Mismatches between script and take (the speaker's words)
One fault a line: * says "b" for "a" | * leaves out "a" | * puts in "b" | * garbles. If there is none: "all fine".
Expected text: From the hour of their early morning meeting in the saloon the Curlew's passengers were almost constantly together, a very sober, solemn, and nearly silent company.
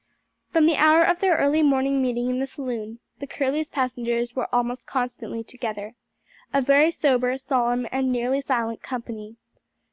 all fine